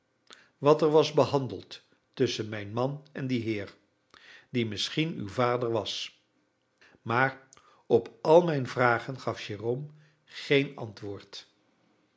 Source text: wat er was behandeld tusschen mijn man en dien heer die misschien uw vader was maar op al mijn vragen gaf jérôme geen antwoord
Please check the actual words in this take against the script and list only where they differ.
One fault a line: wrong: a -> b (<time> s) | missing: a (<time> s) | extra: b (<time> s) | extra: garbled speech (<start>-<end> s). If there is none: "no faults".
no faults